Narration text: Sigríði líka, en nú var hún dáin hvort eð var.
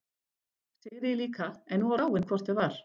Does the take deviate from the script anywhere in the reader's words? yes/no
yes